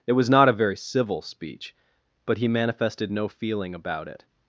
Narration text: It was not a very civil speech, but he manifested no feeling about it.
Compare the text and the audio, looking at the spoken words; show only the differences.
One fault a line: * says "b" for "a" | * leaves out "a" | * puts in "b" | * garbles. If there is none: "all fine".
all fine